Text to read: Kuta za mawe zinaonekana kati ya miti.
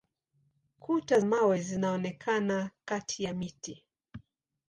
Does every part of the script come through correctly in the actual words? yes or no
no